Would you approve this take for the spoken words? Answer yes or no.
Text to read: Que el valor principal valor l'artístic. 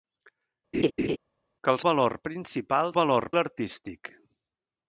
yes